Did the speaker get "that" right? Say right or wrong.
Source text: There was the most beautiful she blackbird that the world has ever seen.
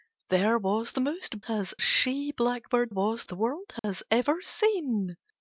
wrong